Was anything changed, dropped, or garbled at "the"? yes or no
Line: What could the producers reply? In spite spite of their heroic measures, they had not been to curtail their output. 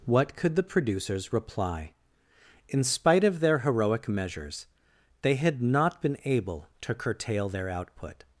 no